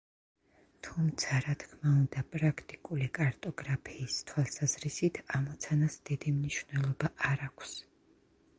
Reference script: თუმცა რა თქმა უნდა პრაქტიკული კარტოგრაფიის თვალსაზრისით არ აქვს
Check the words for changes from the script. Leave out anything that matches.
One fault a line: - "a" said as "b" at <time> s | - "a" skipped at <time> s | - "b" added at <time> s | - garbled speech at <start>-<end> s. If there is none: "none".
- "ამოცანას დიდი მნიშვნელობა" added at 5.4 s